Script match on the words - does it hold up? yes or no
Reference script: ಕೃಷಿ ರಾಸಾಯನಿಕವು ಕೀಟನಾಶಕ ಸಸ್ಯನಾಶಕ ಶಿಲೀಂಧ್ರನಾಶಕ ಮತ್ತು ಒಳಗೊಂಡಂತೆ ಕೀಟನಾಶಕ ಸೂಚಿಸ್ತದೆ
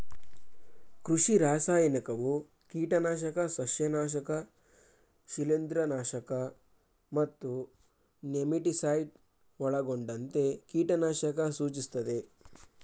no